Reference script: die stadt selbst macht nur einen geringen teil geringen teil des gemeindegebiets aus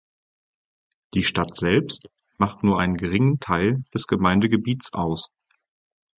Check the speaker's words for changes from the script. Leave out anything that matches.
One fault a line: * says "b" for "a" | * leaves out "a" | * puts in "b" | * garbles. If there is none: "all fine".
* leaves out "geringen teil"